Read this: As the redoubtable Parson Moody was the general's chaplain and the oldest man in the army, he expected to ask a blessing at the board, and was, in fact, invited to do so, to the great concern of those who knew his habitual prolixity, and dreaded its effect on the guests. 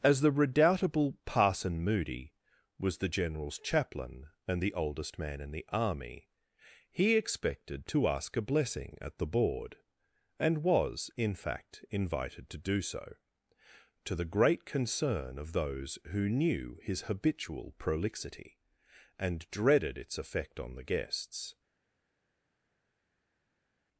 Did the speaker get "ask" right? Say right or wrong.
right